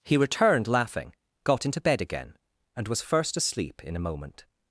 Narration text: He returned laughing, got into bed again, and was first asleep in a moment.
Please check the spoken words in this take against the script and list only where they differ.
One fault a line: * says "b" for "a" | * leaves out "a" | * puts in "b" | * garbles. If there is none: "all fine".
all fine